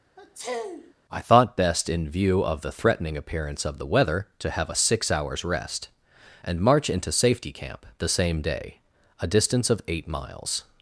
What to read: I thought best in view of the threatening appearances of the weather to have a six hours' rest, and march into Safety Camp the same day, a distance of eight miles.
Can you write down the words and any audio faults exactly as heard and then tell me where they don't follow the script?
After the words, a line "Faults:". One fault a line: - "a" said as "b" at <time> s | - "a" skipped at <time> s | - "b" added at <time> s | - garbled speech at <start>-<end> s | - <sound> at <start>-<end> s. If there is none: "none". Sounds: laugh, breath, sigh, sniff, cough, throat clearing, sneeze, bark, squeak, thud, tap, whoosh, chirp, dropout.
I thought best in view of the threatening appearance of the weather to have a six hours' rest, and march into Safety Camp the same day, a distance of eight miles.
Faults:
- sniff at 0.2-0.9 s
- "appearances" said as "appearance" at 3.2 s